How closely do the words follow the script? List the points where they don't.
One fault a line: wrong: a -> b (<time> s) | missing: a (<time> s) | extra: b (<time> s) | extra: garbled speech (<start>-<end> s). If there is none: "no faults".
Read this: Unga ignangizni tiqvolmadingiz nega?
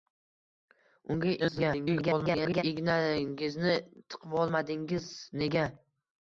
extra: garbled speech (1.4-2.6 s)